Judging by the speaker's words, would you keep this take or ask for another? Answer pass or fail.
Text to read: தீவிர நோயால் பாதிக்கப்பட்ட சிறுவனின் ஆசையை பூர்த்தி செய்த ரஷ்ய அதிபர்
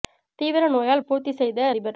fail